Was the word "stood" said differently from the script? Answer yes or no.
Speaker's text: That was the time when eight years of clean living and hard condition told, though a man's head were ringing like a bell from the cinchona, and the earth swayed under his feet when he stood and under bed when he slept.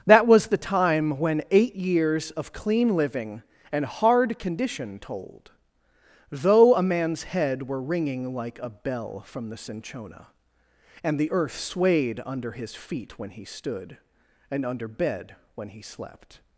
no